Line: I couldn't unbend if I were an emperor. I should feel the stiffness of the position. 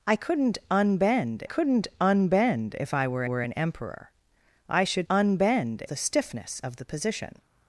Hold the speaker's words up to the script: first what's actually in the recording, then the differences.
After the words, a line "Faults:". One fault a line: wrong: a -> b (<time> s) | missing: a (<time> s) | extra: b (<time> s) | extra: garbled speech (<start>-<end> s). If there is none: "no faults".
I couldn't unbend couldn't unbend if I were were an emperor. I should unbend the stiffness of the position.
Faults:
extra: couldn't unbend (1.4 s)
extra: were (3.2 s)
wrong: feel -> unbend (5.1 s)